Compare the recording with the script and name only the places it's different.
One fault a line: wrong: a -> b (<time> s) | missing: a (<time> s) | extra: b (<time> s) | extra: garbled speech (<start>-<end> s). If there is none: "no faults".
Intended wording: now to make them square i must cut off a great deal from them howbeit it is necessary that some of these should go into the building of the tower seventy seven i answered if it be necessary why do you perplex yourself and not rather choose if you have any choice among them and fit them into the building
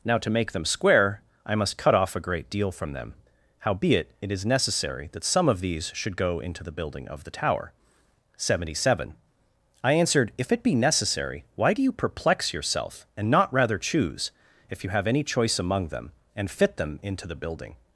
no faults